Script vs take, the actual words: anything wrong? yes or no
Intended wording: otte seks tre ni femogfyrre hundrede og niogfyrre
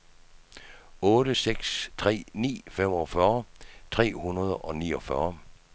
yes